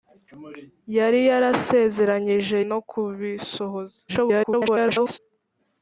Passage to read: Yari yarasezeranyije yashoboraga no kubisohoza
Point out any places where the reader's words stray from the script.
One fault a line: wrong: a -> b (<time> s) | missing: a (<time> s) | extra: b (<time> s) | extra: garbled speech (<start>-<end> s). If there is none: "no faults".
missing: yashoboraga (2.6 s)
extra: garbled speech (4.1-5.2 s)